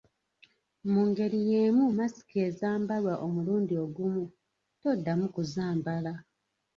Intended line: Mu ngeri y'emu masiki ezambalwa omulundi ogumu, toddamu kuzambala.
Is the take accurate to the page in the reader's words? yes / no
yes